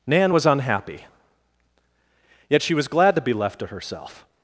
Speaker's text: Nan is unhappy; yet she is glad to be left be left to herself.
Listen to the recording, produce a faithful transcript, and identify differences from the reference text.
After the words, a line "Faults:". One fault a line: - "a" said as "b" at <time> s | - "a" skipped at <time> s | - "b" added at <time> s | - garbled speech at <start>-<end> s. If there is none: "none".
Nan was unhappy; yet she was glad to be left to herself.
Faults:
- "is" said as "was" at 0.3 s
- "is" said as "was" at 2.7 s
- "be left" skipped at 3.6 s